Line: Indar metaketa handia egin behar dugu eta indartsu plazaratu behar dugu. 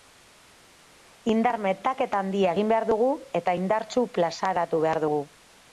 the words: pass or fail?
pass